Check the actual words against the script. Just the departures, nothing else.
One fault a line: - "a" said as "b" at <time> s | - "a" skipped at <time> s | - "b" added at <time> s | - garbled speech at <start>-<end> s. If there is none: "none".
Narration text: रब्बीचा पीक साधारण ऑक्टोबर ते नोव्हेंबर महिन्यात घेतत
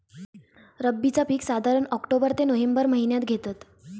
none